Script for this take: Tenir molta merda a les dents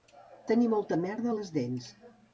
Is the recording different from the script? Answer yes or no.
no